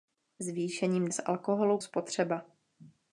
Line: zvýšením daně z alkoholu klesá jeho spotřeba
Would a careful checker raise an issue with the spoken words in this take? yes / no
yes